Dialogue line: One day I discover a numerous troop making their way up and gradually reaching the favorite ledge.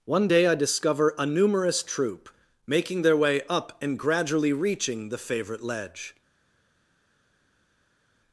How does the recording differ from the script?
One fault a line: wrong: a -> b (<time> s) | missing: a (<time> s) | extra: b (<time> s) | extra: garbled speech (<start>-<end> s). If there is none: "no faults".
no faults